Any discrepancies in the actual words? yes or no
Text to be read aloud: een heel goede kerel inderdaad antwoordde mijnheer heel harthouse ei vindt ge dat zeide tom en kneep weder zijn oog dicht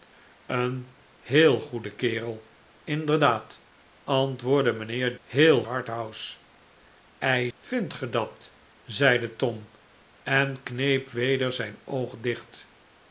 no